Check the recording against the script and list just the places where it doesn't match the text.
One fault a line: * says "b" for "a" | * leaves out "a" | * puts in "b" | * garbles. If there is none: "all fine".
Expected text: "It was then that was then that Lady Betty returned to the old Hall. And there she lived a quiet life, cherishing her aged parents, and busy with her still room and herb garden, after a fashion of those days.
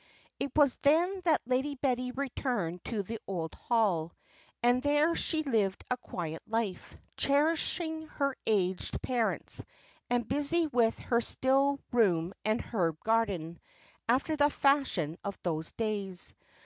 * leaves out "was then that"
* says "the" for "a"